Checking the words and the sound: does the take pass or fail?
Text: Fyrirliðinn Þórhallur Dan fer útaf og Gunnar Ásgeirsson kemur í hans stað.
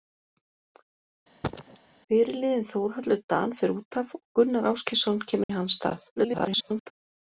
fail